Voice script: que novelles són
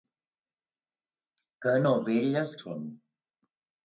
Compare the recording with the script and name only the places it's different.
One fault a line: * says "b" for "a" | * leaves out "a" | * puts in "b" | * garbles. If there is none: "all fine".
all fine